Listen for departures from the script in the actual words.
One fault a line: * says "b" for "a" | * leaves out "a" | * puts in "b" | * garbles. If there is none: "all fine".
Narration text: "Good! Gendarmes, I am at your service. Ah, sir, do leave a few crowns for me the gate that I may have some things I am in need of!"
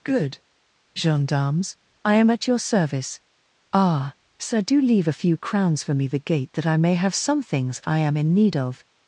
all fine